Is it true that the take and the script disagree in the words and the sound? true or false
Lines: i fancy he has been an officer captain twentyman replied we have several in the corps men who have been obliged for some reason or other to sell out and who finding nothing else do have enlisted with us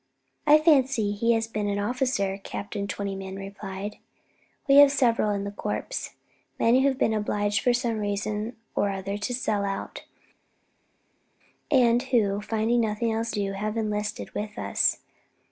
false